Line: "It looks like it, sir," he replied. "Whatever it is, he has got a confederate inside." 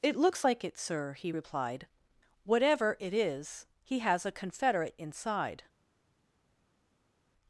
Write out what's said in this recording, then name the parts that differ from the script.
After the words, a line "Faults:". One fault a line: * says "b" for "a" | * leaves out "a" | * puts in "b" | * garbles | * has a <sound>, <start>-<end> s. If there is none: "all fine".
"It looks like it, sir," he replied. "Whatever it is, he has a confederate inside."
Faults:
* leaves out "got"